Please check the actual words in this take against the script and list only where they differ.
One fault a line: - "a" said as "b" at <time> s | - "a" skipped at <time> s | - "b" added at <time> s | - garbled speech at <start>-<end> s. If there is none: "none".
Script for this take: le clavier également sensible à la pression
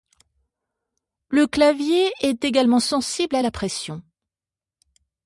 - "est" added at 2.2 s